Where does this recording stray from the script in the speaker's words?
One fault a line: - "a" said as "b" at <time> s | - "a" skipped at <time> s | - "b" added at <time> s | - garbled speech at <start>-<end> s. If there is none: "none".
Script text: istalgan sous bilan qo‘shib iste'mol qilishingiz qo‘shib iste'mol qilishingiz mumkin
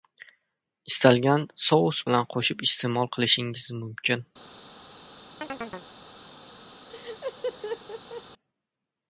- "qo‘shib iste'mol qilishingiz" skipped at 3.7 s